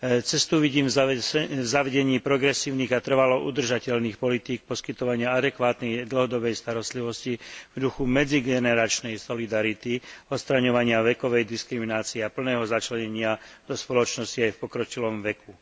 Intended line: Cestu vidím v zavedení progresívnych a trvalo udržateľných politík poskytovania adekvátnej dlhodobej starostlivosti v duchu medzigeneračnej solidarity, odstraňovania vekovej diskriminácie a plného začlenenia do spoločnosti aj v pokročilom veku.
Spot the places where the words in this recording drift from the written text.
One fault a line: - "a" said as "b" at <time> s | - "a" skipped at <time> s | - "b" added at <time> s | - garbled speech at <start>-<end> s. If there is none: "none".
none